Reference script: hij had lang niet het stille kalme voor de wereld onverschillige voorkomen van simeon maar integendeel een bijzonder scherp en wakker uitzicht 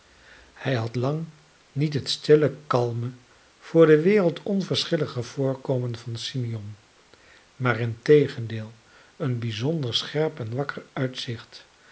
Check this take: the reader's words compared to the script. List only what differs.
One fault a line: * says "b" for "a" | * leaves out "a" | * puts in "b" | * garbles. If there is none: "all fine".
all fine